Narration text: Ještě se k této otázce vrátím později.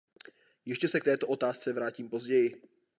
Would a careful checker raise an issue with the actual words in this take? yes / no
no